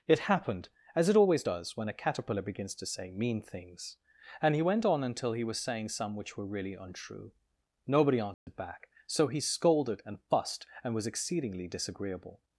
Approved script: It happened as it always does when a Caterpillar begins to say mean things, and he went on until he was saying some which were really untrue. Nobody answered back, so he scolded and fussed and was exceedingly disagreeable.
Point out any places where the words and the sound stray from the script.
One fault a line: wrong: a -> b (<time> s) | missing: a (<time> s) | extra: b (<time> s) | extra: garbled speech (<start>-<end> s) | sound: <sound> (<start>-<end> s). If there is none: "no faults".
sound: dropout (8.3-8.5 s)